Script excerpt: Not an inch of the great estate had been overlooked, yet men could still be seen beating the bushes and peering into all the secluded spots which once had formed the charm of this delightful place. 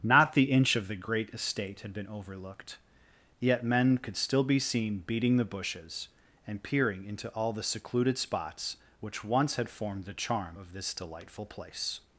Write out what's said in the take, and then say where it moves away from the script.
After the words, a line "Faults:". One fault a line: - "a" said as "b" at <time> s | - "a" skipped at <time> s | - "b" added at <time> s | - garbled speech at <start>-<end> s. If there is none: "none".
Not the inch of the great estate had been overlooked, yet men could still be seen beating the bushes and peering into all the secluded spots which once had formed the charm of this delightful place.
Faults:
- "an" said as "the" at 0.3 s